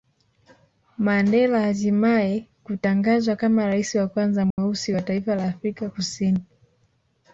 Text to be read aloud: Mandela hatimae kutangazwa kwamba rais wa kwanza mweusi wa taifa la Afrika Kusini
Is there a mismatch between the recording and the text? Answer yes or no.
yes